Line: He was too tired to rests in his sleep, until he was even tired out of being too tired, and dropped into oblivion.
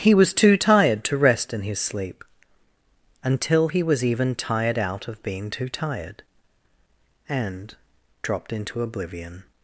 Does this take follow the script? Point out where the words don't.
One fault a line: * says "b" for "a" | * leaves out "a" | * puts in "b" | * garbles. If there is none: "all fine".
* says "rest" for "rests"